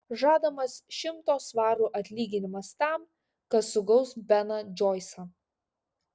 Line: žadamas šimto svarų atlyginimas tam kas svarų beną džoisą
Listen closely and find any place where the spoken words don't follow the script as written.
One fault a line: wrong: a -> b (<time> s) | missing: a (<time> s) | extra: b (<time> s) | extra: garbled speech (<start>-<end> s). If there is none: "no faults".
wrong: svarų -> sugaus (3.7 s)